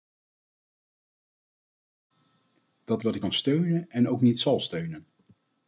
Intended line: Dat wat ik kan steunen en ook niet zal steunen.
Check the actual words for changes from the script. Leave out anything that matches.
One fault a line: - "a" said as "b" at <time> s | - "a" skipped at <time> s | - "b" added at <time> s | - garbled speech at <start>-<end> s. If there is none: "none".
none